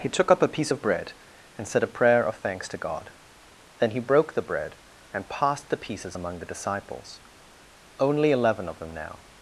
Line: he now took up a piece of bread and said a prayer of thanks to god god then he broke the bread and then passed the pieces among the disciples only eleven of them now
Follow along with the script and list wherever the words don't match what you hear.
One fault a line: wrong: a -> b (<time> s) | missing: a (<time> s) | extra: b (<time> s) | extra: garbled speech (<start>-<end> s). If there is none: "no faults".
missing: now (0.1 s)
missing: god (3.1 s)
missing: then (5.3 s)